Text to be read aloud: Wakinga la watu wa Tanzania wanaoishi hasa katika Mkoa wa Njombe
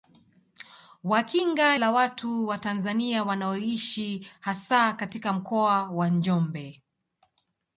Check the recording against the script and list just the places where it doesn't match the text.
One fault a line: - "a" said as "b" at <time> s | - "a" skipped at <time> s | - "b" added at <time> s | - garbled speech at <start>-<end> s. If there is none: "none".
none